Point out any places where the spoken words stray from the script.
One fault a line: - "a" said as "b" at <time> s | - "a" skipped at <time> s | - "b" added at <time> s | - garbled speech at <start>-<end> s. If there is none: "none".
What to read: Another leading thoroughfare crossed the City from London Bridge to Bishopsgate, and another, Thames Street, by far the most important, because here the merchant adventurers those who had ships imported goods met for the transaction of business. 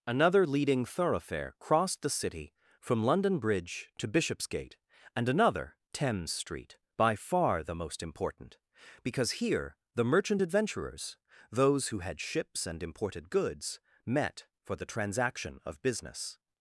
- "and" added at 12.7 s